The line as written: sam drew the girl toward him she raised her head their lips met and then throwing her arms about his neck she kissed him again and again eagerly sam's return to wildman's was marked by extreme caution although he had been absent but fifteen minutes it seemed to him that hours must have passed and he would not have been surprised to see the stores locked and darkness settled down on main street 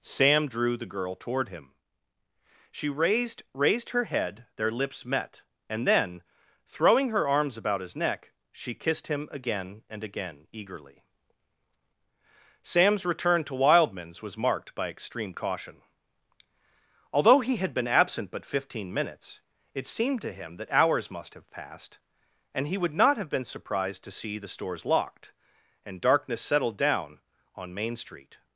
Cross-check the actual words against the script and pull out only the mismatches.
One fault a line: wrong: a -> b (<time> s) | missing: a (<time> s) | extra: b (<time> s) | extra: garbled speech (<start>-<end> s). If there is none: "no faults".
extra: raised (3.5 s)